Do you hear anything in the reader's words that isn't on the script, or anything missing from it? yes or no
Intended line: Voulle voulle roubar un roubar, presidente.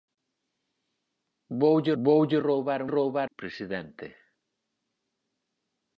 no